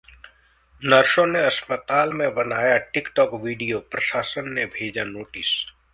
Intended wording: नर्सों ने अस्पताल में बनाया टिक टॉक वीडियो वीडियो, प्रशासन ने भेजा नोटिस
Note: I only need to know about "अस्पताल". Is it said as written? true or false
true